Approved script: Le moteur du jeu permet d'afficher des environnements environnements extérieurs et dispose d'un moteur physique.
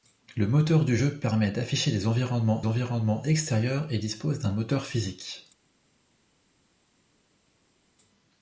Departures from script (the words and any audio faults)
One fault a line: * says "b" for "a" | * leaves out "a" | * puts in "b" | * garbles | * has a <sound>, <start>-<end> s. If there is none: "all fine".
all fine